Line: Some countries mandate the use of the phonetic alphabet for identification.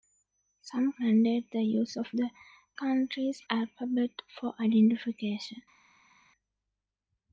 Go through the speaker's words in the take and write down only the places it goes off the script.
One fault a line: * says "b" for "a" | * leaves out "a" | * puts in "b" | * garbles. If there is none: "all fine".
* leaves out "countries"
* says "countries" for "phonetic"